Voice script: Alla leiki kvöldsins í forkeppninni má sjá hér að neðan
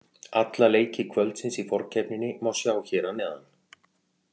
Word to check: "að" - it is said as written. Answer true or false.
true